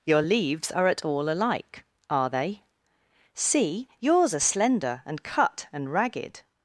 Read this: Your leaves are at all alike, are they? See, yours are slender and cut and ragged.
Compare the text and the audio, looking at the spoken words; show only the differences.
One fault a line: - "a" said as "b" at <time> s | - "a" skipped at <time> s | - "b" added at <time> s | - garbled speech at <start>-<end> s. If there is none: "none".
none